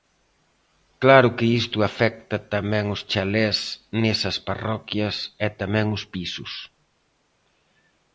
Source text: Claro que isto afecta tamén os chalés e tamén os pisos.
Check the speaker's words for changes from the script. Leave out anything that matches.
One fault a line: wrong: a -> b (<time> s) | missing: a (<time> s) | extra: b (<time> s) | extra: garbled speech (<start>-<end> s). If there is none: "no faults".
extra: nesas parroquias (4.0 s)